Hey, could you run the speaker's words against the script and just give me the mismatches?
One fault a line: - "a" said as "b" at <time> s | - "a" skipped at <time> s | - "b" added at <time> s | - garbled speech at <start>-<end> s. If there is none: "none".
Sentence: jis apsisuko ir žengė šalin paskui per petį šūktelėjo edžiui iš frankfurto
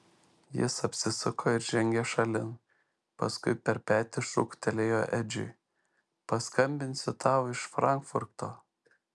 - "paskambinsiu tau" added at 6.3 s